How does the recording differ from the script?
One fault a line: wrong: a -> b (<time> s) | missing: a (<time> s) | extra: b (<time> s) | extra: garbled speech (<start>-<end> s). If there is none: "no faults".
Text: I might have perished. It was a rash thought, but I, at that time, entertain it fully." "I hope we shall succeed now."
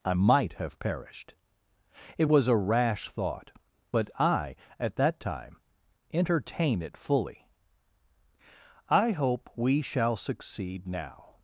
no faults